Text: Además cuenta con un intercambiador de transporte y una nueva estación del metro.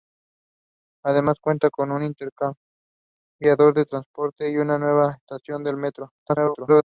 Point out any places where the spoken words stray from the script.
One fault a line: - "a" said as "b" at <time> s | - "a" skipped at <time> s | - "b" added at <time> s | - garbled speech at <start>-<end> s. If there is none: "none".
- garbled speech at 6.2-6.8 s